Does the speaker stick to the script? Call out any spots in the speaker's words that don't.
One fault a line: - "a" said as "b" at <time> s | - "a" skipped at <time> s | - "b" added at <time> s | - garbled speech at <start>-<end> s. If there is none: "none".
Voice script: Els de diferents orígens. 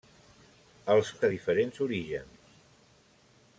none